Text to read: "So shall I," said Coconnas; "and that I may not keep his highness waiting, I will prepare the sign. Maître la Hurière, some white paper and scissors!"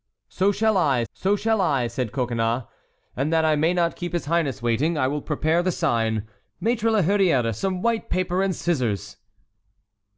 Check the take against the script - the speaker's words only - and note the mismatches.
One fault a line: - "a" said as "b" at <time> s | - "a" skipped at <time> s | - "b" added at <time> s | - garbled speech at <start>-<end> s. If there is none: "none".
- "so shall I" added at 1.1 s